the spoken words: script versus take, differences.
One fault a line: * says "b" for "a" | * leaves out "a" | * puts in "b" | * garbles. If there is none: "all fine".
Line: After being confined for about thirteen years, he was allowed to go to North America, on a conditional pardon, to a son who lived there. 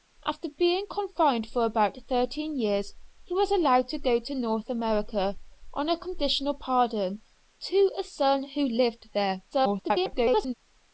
* garbles